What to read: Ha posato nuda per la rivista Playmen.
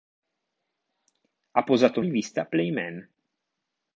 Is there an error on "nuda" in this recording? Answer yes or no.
yes